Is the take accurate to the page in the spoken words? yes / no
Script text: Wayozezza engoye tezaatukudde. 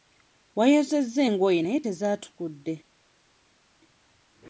no